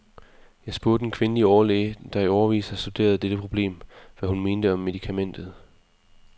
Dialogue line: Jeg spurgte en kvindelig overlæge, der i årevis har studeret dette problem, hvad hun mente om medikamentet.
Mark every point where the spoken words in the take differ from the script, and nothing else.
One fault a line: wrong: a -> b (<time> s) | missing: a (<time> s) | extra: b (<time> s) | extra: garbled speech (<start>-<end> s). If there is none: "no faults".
no faults